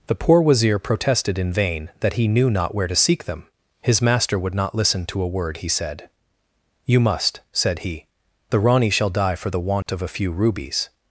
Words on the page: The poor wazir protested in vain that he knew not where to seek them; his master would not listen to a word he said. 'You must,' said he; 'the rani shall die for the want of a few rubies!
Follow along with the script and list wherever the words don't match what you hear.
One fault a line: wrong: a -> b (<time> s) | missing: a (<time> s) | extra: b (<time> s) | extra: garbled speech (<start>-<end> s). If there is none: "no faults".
no faults